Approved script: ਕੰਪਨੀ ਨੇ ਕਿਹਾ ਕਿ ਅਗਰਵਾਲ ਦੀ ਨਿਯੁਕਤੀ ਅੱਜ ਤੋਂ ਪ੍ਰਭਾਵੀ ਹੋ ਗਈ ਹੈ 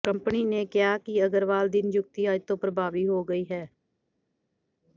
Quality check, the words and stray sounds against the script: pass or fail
pass